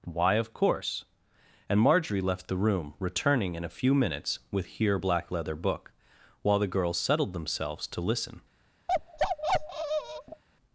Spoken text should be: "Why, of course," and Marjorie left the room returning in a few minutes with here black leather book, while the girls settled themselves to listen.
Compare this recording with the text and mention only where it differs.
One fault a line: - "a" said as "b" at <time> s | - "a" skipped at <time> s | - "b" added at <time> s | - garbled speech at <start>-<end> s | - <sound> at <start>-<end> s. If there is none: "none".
- bark at 8.9-10.4 s